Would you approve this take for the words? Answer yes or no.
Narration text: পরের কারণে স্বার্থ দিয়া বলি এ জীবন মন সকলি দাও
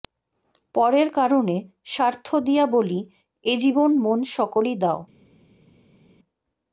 yes